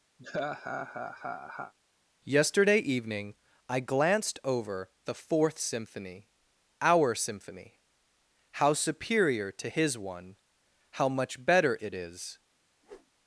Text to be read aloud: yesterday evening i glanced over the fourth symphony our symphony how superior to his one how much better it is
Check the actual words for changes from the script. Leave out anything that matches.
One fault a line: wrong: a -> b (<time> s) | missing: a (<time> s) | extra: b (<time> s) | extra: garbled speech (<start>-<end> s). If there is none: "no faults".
no faults